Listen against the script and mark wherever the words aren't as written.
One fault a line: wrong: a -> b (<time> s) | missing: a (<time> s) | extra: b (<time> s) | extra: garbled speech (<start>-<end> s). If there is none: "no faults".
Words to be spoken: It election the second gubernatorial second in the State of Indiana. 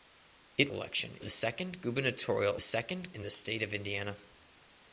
no faults